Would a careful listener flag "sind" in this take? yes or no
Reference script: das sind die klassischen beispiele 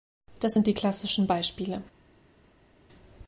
no